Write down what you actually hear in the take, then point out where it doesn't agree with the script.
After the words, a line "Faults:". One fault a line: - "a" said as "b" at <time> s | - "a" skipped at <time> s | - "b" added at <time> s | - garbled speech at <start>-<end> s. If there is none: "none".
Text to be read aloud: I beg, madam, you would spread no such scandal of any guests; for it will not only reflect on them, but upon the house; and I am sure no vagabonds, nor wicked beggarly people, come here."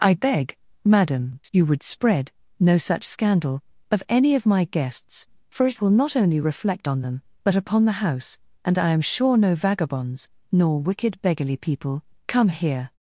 I beg, madam, you would spread no such scandal of any of my guests; for it will not only reflect on them, but upon the house; and I am sure no vagabonds, nor wicked beggarly people, come here."
Faults:
- "of my" added at 4.3 s